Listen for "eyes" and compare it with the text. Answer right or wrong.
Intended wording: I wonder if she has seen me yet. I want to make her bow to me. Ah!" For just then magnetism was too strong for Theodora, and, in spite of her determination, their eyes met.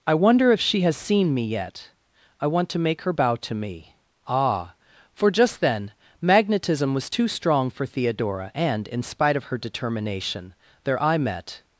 wrong